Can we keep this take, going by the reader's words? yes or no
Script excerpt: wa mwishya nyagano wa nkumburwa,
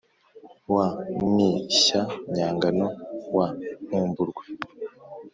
yes